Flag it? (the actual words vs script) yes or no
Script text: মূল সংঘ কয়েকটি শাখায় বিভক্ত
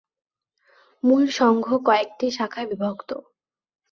no